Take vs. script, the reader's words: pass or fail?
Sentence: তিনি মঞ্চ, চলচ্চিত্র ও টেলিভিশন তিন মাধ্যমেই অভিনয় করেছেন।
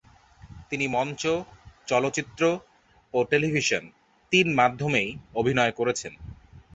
pass